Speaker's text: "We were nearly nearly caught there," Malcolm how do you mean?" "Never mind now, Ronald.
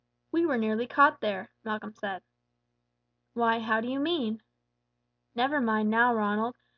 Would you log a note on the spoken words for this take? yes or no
yes